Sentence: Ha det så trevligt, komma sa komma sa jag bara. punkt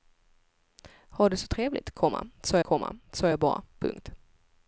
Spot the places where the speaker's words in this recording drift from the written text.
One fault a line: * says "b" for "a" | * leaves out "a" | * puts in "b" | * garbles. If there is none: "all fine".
all fine